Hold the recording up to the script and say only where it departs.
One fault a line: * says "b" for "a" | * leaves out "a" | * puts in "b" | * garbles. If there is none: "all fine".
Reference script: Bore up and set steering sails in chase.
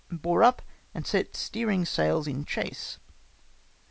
all fine